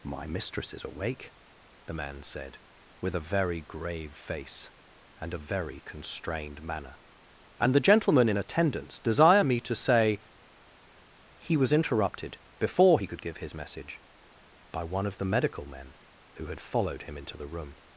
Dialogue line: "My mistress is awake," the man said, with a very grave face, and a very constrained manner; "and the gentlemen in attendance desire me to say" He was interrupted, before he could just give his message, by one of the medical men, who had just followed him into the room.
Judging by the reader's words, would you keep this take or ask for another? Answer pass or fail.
fail